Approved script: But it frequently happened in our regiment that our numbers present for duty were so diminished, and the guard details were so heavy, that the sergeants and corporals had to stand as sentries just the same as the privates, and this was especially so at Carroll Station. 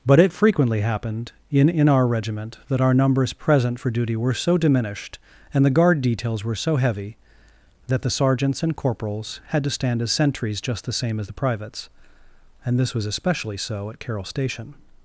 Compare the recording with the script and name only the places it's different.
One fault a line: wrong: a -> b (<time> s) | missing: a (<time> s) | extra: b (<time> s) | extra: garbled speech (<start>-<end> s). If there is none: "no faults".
extra: in (1.7 s)